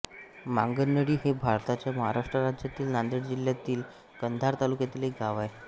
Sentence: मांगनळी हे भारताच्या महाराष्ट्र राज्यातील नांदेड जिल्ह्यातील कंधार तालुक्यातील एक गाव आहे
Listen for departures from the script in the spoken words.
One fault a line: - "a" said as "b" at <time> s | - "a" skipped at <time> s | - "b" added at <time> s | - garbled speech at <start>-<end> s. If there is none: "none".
none